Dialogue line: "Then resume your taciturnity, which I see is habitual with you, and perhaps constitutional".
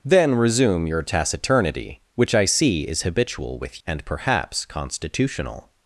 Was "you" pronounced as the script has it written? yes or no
no